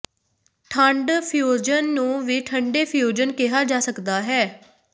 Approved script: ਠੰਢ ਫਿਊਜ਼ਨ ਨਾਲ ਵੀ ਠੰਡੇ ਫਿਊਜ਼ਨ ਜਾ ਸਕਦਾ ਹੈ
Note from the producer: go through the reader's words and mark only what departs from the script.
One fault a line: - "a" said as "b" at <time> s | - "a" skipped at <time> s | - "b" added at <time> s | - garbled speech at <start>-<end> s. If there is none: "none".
- "ਨਾਲ" said as "ਨੂੰ" at 1.9 s
- "ਕਿਹਾ" added at 3.3 s